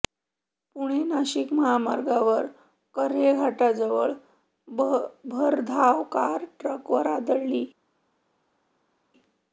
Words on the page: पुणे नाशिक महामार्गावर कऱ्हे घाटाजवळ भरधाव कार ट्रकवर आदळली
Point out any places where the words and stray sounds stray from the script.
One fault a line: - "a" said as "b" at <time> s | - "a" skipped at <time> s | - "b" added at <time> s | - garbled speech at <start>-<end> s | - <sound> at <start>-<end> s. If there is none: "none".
none